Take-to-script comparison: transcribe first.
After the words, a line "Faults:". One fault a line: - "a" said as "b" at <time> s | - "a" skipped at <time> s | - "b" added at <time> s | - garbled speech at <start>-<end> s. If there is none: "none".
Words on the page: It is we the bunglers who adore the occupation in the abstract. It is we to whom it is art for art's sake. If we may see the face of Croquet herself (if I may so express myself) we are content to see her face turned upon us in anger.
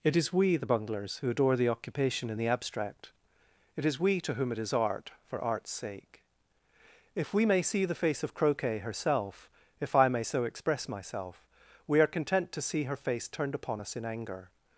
It is we the bunglers who adore the occupation in the abstract. It is we to whom it is art for art's sake. If we may see the face of Croquet herself (if I may so express myself) we are content to see her face turned upon us in anger.
Faults:
none